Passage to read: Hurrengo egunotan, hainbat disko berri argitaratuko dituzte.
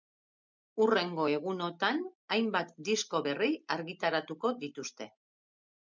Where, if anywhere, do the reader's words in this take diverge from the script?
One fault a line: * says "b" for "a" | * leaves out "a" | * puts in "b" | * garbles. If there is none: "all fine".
all fine